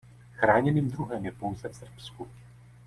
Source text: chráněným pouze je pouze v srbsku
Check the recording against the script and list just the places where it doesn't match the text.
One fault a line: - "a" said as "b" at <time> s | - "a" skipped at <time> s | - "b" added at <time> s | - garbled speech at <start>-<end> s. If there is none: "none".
- "pouze" said as "druhem" at 0.9 s